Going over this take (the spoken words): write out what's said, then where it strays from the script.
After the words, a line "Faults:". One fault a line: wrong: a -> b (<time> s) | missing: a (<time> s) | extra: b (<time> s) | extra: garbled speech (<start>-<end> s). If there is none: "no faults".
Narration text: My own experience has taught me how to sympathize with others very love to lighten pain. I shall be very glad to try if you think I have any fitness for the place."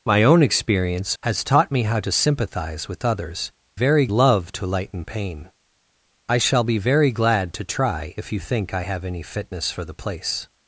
My own experience has taught me how to sympathize with others very love to lighten pain. I shall be very glad to try if you think I have any fitness for the place."
Faults:
no faults